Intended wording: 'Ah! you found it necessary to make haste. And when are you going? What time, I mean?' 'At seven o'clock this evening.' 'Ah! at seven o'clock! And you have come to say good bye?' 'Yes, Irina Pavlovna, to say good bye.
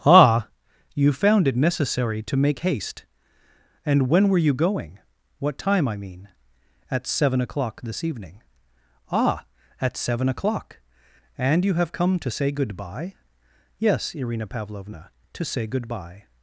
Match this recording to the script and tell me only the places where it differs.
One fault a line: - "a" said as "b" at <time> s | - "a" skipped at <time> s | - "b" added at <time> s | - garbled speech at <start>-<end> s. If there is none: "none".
- "are" said as "were" at 4.3 s